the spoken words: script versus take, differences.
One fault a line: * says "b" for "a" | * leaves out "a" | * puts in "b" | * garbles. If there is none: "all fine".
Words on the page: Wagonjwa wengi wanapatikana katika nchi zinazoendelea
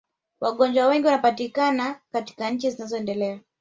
all fine